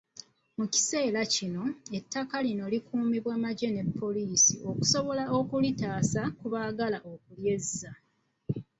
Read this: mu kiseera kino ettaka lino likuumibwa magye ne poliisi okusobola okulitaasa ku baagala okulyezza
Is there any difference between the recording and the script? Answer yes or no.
no